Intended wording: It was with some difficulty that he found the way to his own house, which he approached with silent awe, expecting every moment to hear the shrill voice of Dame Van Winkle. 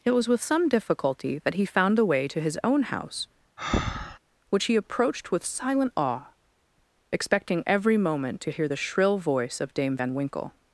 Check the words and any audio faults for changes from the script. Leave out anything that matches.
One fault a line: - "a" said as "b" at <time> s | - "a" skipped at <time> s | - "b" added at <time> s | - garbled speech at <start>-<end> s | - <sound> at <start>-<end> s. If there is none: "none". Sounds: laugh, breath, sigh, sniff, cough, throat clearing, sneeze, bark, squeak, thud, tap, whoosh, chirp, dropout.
- breath at 3.6-4.2 s